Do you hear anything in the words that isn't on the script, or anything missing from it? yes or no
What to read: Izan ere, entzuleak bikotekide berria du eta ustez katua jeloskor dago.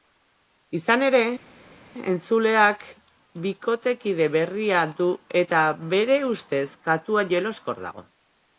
yes